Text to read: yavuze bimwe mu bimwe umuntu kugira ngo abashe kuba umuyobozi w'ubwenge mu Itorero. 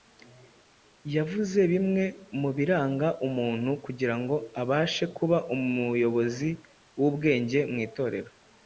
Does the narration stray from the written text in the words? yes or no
yes